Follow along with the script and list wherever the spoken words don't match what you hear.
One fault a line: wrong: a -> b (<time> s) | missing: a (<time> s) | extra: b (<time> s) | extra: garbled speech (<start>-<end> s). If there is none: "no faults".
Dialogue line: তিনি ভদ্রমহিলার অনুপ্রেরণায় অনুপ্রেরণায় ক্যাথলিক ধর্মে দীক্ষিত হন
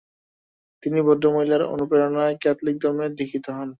missing: অনুপ্রেরণায় (2.4 s)